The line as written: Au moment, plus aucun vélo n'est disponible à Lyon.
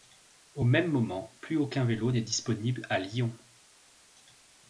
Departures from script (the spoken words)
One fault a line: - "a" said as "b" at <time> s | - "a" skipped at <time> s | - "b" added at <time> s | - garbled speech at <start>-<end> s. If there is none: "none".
- "même" added at 0.6 s